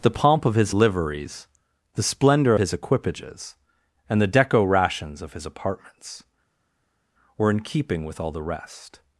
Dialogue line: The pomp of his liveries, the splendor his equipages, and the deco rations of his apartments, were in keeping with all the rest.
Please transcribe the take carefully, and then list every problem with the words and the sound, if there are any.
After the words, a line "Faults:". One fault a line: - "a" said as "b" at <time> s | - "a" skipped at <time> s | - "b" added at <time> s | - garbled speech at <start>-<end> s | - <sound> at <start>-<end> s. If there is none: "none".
The pomp of his liveries, the splendor his equipages, and the deco rations of his apartments, were in keeping with all the rest.
Faults:
none